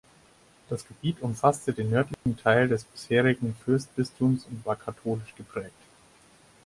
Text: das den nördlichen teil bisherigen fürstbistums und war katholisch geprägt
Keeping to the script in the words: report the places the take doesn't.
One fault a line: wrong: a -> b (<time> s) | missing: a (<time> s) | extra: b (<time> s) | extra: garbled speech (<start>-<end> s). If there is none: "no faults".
extra: gebiet umfasste (0.9 s)
extra: des (2.7 s)